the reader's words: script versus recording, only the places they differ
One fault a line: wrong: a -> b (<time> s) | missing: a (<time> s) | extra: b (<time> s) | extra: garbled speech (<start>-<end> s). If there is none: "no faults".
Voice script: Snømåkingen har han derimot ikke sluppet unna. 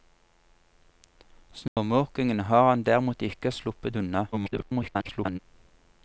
extra: garbled speech (4.3-5.4 s)